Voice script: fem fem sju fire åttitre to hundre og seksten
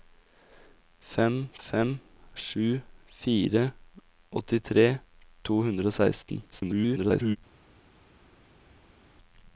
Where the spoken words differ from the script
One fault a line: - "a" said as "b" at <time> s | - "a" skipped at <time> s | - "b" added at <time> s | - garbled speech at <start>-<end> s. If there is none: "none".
- garbled speech at 6.5-7.4 s